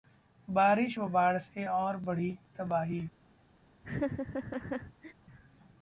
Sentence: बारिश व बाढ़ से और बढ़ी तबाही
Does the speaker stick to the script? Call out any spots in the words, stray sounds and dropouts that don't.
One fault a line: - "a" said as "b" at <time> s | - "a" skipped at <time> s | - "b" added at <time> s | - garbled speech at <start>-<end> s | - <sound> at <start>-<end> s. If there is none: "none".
- laugh at 3.8-5.1 s